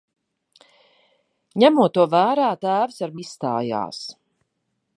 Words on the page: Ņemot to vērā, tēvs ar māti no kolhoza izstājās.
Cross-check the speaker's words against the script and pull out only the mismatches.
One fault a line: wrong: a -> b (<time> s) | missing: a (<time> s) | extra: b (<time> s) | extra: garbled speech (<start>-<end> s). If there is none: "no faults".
missing: māti no kolhoza (3.2 s)